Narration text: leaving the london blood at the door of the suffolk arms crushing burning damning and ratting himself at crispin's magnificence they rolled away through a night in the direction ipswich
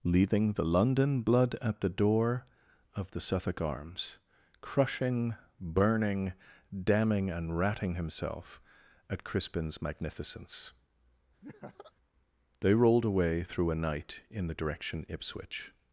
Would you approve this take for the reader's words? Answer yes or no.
yes